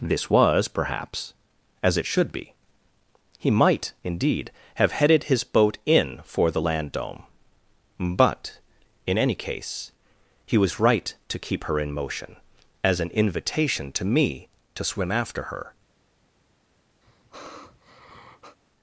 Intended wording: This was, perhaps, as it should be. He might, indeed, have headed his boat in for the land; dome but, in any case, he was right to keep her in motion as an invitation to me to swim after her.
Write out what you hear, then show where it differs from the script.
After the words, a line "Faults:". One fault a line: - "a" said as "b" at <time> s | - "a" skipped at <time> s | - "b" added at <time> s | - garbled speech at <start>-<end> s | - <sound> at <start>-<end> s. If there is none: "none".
This was, perhaps, as it should be. He might, indeed, have headed his boat in for the land; dome but, in any case, he was right to keep her in motion as an invitation to me to swim after her.
Faults:
- sigh at 17.0-18.6 s